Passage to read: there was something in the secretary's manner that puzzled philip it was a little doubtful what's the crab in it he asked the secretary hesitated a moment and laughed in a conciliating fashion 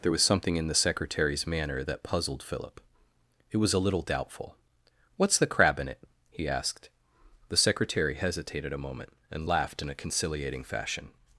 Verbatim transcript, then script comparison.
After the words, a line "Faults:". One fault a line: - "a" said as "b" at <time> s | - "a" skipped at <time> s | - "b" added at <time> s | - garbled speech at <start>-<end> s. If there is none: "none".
there was something in the secretary's manner that puzzled philip it was a little doubtful what's the crab in it he asked the secretary hesitated a moment and laughed in a conciliating fashion
Faults:
none